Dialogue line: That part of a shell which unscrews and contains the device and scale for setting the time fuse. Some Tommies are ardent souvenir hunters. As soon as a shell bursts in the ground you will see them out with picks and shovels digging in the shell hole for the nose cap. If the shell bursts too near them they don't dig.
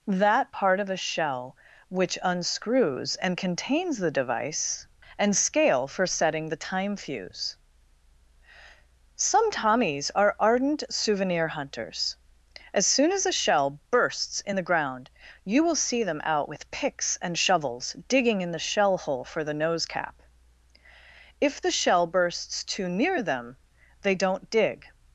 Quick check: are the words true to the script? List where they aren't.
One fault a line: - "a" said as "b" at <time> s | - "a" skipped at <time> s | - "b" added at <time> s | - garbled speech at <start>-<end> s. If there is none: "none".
none